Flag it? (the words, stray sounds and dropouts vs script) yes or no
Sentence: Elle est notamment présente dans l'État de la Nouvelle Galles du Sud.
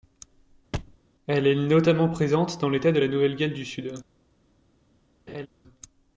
yes